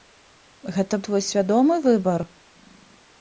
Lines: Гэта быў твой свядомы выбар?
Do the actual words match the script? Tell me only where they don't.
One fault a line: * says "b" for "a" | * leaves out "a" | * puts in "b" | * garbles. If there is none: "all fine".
* leaves out "быў"